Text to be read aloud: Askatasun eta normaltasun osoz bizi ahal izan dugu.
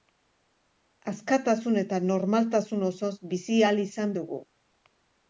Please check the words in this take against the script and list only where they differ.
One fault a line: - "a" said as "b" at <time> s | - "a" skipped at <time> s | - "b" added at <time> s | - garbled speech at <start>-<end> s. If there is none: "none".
none